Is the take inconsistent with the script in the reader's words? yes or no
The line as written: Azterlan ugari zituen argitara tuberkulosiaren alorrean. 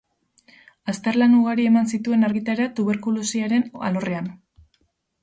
yes